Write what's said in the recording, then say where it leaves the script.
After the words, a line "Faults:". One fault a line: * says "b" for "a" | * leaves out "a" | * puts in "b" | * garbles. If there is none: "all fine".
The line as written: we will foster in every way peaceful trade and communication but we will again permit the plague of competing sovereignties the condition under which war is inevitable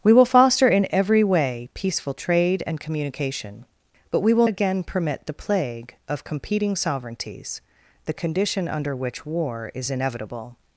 we will foster in every way peaceful trade and communication but we will again permit the plague of competing sovereignties the condition under which war is inevitable
Faults:
all fine